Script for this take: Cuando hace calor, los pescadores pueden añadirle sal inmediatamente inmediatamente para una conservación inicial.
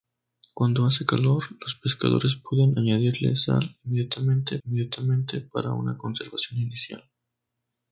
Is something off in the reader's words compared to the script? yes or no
no